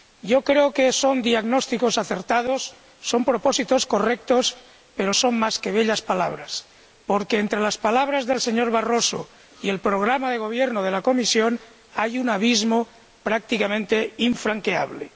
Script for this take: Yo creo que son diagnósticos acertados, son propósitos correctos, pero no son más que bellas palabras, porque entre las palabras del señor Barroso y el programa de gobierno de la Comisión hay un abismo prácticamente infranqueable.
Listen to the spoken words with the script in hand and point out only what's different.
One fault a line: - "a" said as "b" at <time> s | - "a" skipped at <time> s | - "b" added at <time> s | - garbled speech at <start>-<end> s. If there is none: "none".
- "no" skipped at 5.1 s